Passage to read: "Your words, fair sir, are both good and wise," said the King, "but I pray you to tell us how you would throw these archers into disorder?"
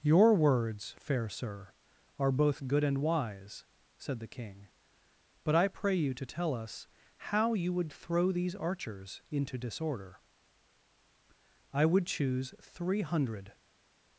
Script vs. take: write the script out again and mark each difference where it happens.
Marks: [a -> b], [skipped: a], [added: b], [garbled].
"Your words, fair sir, are both good and wise," said the King, "but I pray you to tell us how you would throw these archers into disorder?" [added: I would choose three hundred]